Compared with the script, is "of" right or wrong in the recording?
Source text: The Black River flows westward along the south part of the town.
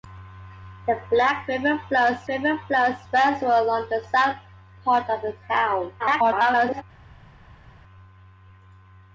right